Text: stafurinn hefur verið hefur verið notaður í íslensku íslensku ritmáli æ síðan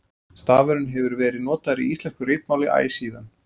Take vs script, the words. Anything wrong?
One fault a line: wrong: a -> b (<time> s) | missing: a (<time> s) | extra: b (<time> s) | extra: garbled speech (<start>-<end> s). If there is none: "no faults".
missing: hefur verið (1.4 s)
missing: íslensku (2.3 s)